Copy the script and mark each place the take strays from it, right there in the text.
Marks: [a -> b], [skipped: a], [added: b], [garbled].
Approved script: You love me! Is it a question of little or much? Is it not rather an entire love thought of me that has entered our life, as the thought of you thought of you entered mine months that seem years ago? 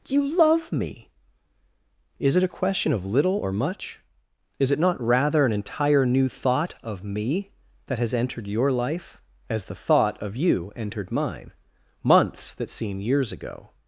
You love me! Is it a question of little or much? Is it not rather an entire [love -> new] thought of me that has entered [our -> your] life, as the thought of you [skipped: thought of you] entered mine months that seem years ago?